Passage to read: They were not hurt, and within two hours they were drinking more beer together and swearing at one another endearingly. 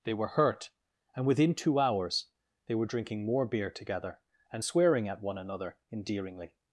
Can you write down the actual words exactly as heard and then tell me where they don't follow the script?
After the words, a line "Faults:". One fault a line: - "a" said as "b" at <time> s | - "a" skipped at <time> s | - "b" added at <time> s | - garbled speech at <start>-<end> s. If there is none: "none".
They were hurt, and within two hours they were drinking more beer together and swearing at one another endearingly.
Faults:
- "not" skipped at 0.3 s